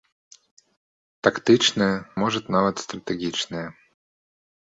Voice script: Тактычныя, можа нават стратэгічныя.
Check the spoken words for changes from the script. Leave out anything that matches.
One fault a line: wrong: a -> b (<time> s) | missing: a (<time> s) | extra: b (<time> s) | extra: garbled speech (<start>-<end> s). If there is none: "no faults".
no faults